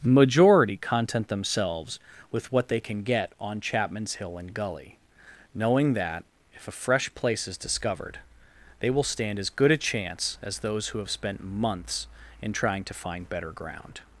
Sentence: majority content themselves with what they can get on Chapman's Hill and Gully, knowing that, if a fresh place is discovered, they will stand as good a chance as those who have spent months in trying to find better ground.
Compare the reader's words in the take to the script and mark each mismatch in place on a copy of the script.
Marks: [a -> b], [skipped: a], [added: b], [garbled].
majority content themselves with what they can get on Chapman's Hill and Gully, knowing that, if a fresh place is discovered, they will stand as good a chance as those who have spent months in trying to find better ground.